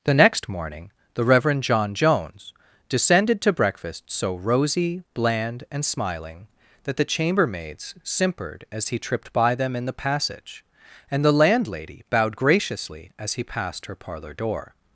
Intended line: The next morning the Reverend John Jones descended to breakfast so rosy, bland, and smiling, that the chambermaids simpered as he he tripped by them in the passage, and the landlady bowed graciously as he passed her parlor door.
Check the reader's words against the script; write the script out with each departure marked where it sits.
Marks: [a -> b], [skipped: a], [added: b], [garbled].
The next morning the Reverend John Jones descended to breakfast so rosy, bland, and smiling, that the chambermaids simpered as he [skipped: he] tripped by them in the passage, and the landlady bowed graciously as he passed her parlor door.